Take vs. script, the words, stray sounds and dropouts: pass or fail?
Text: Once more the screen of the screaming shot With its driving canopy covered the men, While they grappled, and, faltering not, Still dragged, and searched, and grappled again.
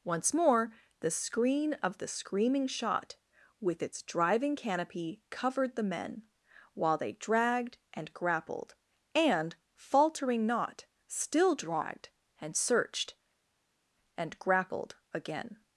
fail